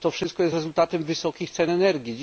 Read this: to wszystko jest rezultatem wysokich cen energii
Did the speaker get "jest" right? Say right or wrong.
right